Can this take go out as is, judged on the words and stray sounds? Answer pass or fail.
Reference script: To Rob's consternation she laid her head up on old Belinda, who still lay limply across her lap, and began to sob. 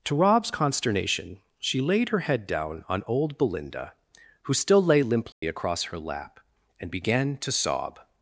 fail